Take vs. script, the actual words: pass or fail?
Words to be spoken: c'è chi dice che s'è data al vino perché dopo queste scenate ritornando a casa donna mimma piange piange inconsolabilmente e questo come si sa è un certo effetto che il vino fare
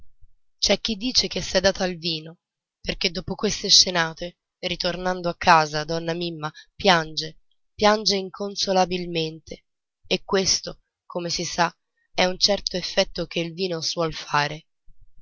fail